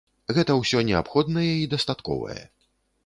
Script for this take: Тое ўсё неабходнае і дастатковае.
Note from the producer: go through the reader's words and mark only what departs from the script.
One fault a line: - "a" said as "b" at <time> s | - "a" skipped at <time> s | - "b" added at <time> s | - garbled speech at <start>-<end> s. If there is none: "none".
- "Тое" said as "Гэта" at 0.4 s